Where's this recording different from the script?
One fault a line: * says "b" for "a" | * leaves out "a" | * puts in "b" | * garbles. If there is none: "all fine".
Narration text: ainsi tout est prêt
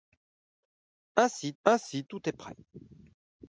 * puts in "ainsi"